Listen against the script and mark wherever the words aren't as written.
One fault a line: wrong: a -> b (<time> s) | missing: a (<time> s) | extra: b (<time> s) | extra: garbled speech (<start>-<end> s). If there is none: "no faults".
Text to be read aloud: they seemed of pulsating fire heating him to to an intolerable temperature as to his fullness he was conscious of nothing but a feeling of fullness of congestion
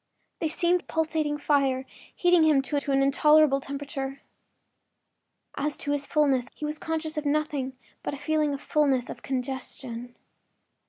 no faults